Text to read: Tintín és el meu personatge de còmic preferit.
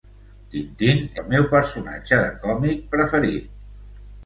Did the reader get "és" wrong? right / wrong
wrong